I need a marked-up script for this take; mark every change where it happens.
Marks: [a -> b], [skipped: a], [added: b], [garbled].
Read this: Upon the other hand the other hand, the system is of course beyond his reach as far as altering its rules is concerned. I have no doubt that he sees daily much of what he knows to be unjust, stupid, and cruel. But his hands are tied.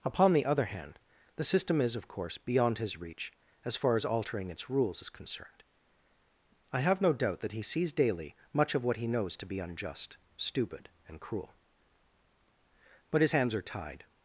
Upon the other hand the [skipped: other hand, the] system is of course beyond his reach as far as altering its rules is concerned. I have no doubt that he sees daily much of what he knows to be unjust, stupid, and cruel. But his hands are tied.